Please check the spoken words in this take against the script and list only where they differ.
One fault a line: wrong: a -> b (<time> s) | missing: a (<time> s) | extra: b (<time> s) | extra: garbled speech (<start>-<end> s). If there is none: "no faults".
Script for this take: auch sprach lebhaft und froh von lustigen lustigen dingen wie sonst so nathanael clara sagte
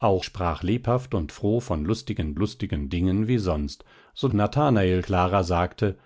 no faults